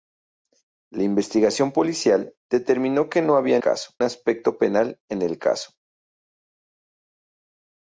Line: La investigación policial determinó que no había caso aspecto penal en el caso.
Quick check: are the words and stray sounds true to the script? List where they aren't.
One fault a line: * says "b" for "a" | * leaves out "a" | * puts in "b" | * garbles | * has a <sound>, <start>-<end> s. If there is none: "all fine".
all fine